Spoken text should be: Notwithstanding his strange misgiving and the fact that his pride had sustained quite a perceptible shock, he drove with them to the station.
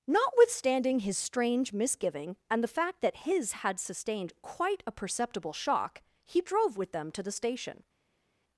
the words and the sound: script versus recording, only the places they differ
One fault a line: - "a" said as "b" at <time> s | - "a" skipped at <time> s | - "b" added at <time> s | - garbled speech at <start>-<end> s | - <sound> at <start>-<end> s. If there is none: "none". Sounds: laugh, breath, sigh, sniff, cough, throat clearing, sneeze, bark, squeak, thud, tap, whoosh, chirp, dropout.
- "pride" skipped at 3.5 s